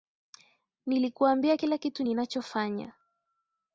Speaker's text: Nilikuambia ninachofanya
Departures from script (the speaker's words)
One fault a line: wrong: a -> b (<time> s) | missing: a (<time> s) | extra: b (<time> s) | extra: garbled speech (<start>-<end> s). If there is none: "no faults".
extra: kila kitu (1.5 s)